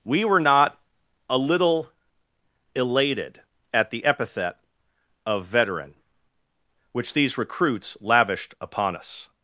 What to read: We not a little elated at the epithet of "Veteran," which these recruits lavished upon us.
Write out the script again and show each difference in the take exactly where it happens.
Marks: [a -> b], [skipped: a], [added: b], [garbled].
We [added: were] not a little elated at the epithet of "Veteran," which these recruits lavished upon us.